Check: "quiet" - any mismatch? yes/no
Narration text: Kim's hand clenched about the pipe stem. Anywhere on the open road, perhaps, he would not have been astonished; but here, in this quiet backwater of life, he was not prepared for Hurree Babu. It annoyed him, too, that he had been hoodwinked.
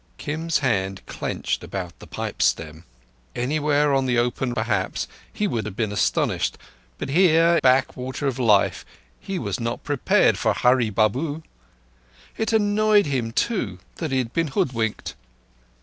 yes